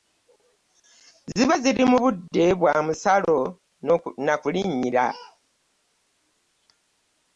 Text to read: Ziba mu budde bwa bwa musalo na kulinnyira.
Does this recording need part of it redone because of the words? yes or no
yes